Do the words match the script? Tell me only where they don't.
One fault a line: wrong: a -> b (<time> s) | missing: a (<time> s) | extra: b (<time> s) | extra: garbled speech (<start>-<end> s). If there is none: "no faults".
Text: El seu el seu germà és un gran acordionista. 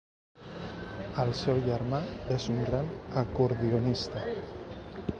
missing: el seu (1.6 s)